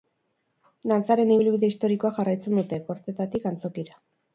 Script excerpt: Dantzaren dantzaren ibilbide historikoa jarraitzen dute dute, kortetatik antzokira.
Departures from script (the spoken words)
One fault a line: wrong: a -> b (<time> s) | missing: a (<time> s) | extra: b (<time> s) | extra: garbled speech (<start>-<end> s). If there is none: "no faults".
missing: dantzaren (1.4 s)
missing: dute (2.8 s)